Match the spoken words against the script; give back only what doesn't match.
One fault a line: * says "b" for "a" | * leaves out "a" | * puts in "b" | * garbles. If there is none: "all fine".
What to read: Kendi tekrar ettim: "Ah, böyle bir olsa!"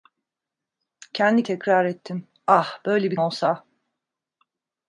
all fine